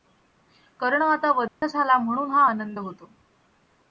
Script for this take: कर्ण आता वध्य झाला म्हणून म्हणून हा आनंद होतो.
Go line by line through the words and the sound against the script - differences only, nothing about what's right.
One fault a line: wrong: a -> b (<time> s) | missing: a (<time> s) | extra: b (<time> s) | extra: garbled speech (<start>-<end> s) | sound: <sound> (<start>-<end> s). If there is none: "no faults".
sound: dropout (1.5-1.6 s)
missing: म्हणून (2.3 s)